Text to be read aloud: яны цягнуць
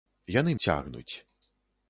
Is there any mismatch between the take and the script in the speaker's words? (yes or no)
no